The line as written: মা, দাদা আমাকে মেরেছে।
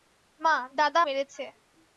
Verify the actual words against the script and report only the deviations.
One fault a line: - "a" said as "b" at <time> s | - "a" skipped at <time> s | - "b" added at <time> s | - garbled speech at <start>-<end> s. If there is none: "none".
- "আমাকে" skipped at 1.0 s